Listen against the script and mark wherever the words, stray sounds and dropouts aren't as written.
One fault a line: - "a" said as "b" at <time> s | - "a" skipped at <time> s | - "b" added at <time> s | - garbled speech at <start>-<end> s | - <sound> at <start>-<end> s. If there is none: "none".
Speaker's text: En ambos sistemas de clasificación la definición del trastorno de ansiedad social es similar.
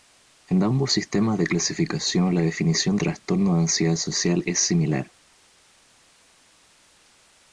- "del" skipped at 3.0 s